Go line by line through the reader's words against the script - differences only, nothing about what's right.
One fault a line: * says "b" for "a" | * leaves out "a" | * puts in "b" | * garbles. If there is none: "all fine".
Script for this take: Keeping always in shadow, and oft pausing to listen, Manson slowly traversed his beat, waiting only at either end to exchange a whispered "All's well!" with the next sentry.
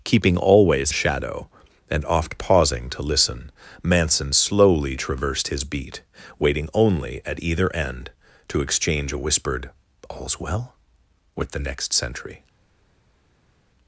* leaves out "in"